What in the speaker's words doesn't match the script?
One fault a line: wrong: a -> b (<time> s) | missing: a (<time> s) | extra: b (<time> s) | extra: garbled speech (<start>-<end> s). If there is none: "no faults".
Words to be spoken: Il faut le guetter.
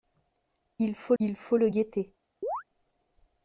extra: il faut (1.2 s)